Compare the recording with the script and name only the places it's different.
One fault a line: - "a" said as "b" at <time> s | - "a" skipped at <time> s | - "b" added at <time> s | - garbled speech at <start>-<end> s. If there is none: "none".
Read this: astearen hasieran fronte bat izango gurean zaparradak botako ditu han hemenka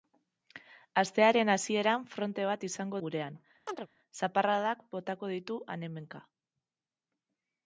none